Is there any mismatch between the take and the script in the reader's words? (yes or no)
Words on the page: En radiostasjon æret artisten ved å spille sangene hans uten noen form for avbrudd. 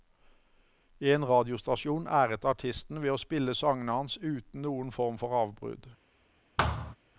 no